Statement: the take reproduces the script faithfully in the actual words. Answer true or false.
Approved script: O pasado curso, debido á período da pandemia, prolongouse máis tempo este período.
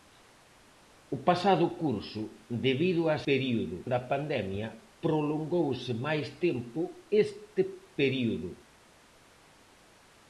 true